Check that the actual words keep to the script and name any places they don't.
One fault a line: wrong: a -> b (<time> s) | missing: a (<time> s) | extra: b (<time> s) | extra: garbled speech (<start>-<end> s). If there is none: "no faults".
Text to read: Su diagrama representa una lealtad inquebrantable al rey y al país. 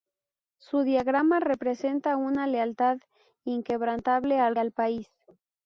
missing: rey y (4.5 s)